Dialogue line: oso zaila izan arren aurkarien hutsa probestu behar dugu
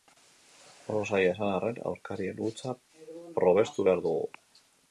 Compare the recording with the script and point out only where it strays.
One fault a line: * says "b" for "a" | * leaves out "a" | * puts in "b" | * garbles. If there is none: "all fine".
all fine